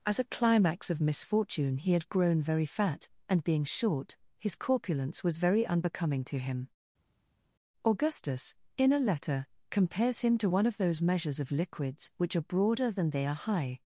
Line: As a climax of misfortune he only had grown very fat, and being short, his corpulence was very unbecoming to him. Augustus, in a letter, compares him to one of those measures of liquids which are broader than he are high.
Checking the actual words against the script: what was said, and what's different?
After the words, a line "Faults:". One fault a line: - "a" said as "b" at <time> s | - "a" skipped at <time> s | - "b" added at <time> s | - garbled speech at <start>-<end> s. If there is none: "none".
As a climax of misfortune he had grown very fat, and being short, his corpulence was very unbecoming to him. Augustus, in a letter, compares him to one of those measures of liquids which are broader than they are high.
Faults:
- "only" skipped at 1.9 s
- "he" said as "they" at 13.1 s